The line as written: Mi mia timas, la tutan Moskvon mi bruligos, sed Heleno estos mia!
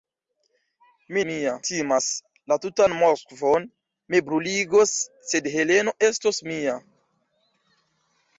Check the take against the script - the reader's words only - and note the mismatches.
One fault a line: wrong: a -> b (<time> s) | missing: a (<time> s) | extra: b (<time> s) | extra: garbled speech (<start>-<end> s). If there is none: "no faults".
no faults